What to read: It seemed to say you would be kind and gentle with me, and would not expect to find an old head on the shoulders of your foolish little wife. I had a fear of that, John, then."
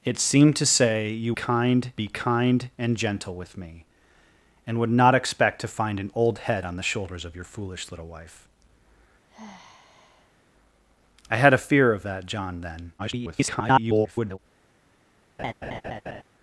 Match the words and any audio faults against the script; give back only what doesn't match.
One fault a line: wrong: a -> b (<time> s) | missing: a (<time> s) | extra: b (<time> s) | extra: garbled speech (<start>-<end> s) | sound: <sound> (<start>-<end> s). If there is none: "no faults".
wrong: would -> kind (1.3 s)
sound: sigh (9.3-10.4 s)
extra: garbled speech (13.0-14.4 s)
sound: laugh (15.4-16.2 s)